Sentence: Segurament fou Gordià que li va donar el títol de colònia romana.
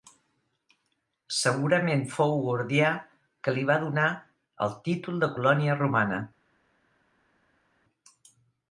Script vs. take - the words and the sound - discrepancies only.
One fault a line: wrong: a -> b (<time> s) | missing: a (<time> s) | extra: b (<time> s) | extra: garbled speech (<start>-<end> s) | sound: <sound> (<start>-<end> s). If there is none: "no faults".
no faults